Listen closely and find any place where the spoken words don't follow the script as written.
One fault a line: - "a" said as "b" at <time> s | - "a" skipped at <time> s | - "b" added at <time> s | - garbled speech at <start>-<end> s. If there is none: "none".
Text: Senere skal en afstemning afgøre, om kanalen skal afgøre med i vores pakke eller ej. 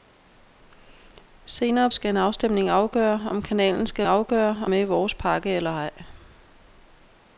none